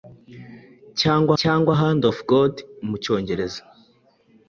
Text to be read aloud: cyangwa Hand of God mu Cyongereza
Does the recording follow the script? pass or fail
fail